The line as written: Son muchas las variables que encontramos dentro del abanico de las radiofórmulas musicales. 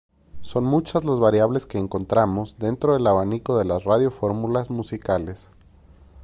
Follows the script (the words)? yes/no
yes